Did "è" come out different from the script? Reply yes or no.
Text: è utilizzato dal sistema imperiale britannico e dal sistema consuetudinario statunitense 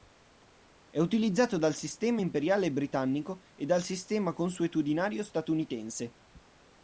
no